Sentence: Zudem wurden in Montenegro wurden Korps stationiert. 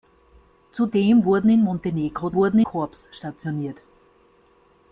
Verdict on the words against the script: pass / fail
pass